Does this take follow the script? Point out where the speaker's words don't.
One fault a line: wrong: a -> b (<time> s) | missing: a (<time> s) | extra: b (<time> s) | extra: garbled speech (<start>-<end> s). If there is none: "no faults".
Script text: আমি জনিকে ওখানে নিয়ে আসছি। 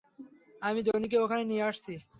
no faults